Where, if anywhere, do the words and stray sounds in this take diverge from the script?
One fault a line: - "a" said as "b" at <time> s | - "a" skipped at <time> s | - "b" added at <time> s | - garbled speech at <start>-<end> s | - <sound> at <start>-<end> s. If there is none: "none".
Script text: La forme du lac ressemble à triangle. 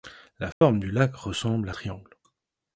- dropout at 0.5-0.6 s